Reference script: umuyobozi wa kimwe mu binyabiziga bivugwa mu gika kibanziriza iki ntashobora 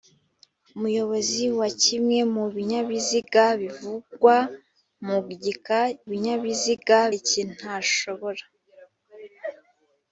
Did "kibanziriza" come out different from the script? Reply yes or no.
yes